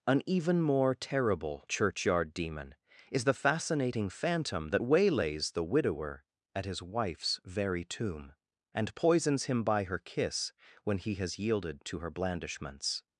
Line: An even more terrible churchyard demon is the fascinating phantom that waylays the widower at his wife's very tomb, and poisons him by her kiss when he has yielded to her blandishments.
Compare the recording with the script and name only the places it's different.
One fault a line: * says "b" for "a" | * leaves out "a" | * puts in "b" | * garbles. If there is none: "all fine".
all fine